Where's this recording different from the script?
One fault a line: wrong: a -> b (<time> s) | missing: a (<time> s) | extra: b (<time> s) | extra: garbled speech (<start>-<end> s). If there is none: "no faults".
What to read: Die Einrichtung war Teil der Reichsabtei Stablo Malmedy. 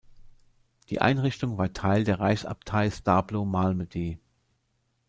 no faults